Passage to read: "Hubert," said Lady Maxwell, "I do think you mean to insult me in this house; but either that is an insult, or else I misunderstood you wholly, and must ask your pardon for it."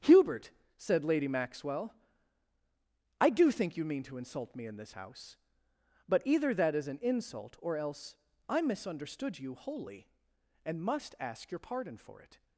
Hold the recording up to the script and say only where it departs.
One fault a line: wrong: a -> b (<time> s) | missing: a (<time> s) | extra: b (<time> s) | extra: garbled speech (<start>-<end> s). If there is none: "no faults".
no faults